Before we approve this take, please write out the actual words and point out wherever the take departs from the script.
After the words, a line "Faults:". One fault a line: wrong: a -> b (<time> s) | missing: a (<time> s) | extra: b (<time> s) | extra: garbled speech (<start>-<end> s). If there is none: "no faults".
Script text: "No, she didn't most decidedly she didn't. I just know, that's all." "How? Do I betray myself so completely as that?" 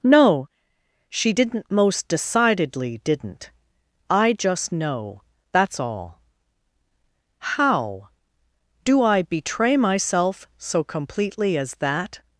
"No, she didn't most decidedly didn't. I just know, that's all." "How? Do I betray myself so completely as that?"
Faults:
missing: she (3.0 s)